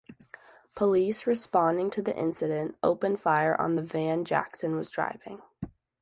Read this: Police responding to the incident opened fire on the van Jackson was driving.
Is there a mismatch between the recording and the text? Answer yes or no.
no